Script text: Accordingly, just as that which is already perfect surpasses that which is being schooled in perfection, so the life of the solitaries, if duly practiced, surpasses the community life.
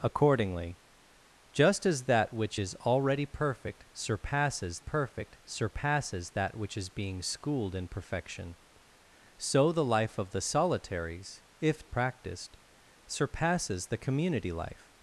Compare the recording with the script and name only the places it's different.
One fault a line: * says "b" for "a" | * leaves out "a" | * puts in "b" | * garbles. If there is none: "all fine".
* puts in "perfect surpasses"
* leaves out "duly"